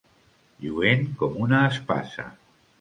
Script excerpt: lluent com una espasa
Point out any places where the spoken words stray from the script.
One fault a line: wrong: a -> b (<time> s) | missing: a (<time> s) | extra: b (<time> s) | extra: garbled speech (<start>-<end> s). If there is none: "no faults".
no faults